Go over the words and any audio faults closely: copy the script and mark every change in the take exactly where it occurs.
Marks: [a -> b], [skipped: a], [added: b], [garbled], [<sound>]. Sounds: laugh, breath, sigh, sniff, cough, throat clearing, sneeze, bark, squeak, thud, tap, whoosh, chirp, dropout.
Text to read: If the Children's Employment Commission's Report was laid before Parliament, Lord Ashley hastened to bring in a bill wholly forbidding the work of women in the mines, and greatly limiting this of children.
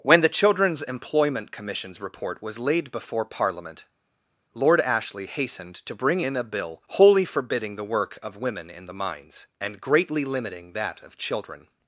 [If -> When] the Children's Employment Commission's Report was laid before Parliament, Lord Ashley hastened to bring in a bill wholly forbidding the work of women in the mines, and greatly limiting [this -> that] of children.